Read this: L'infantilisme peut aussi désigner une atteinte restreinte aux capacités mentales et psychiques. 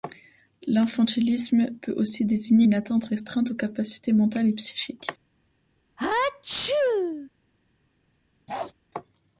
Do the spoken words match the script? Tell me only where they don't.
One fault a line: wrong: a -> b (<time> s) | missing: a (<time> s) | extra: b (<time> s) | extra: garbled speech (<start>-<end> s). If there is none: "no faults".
no faults